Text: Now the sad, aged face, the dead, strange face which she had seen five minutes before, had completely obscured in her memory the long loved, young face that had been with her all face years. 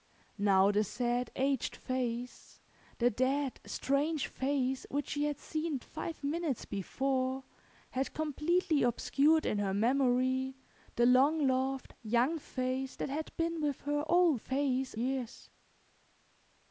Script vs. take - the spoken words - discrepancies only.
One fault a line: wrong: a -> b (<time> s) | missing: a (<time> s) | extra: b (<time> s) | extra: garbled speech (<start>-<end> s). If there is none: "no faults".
no faults